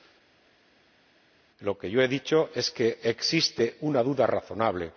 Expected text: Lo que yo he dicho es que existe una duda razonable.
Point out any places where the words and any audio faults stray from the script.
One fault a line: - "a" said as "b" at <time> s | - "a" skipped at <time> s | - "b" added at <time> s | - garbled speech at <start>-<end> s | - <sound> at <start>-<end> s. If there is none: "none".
none